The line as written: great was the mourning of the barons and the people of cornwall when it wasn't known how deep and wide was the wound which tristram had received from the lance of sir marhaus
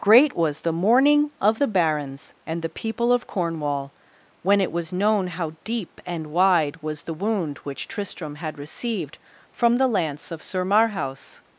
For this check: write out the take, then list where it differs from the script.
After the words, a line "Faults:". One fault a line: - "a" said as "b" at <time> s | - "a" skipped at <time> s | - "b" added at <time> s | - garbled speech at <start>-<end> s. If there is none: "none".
great was the mourning of the barons and the people of cornwall when it was known how deep and wide was the wound which tristram had received from the lance of sir marhaus
Faults:
- "wasn't" said as "was" at 4.7 s